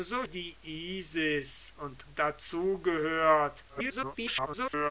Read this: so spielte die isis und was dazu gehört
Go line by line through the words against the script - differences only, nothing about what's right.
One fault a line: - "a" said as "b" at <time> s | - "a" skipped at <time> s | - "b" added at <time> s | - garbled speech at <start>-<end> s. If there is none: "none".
- "spielte" skipped at 0.2 s
- "was" skipped at 2.0 s
- garbled speech at 3.7-4.9 s